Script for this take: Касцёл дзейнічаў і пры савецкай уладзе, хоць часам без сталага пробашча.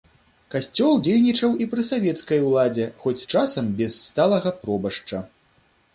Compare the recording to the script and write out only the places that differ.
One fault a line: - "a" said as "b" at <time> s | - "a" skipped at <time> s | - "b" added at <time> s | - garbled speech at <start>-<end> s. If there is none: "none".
none